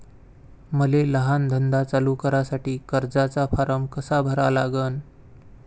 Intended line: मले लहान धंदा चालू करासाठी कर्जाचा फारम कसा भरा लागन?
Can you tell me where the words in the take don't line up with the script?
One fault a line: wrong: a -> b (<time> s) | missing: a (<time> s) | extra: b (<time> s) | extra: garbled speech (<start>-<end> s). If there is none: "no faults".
no faults